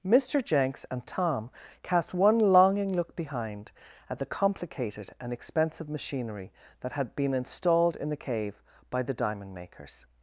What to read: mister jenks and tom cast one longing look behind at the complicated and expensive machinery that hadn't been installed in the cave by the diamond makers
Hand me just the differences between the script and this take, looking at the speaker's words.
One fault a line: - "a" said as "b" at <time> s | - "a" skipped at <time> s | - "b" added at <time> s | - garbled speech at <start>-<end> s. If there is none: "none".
- "hadn't" said as "had" at 6.9 s